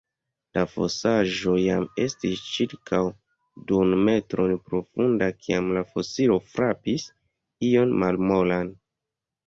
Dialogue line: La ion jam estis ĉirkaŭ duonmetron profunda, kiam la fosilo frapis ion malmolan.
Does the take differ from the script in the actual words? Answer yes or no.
yes